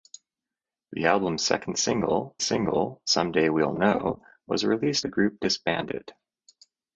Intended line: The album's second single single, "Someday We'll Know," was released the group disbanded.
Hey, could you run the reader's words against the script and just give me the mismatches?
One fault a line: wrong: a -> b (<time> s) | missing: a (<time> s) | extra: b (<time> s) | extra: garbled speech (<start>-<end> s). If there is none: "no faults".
no faults